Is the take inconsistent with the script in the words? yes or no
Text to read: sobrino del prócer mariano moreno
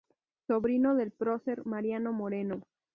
no